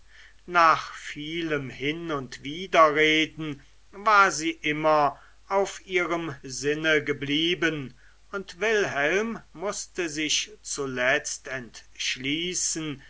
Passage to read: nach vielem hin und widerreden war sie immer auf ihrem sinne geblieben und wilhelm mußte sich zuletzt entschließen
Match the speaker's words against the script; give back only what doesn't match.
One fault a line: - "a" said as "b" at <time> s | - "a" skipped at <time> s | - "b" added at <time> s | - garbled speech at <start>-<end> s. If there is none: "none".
none